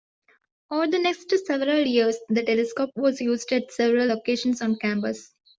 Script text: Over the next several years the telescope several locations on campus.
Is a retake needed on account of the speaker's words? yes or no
yes